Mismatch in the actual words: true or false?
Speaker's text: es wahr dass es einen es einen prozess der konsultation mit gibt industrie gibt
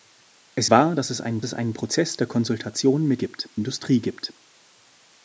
false